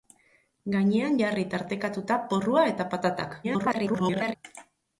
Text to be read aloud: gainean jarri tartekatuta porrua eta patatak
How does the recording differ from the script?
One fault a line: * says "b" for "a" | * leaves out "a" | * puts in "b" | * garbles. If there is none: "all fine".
* garbles